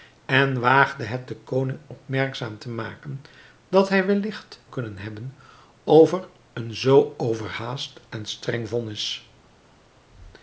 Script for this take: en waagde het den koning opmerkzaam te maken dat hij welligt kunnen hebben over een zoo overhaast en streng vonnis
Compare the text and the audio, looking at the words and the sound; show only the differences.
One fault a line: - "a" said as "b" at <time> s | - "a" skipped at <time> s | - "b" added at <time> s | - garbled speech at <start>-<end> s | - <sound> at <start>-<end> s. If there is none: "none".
none